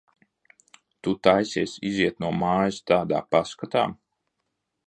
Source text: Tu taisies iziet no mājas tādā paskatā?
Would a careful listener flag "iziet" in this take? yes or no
no